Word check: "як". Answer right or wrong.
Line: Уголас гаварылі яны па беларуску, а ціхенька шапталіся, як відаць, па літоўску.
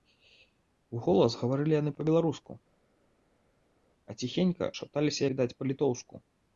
wrong